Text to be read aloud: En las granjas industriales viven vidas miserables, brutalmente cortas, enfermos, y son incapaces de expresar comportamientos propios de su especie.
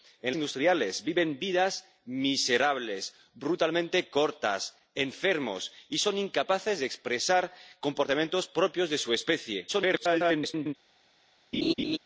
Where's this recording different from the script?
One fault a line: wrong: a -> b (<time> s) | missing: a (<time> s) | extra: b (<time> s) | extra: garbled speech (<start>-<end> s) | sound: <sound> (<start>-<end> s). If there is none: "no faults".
missing: las granjas (0.3 s)
extra: garbled speech (9.7-10.7 s)
sound: laugh (11.5-12.0 s)